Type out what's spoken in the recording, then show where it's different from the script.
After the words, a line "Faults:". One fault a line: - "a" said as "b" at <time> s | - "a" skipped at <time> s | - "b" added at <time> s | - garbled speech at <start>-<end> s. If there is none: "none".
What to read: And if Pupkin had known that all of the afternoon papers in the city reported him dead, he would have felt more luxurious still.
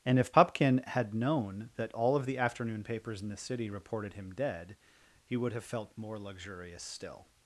And if Pupkin had known that all of the afternoon papers in the city reported him dead, he would have felt more luxurious still.
Faults:
none